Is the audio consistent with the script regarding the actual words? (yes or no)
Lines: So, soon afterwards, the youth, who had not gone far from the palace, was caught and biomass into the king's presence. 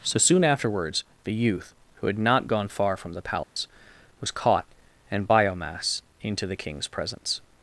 yes